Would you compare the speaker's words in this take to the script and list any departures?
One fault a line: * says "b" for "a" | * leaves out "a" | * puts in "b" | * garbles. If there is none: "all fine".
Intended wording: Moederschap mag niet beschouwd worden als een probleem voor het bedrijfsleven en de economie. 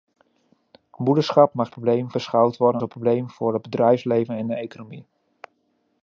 * says "probleem" for "niet"
* leaves out "als"